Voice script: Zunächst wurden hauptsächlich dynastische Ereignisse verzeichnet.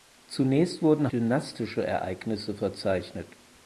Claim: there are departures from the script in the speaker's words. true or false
true